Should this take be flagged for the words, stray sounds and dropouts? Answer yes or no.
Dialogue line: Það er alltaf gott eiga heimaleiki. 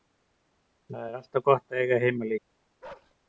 yes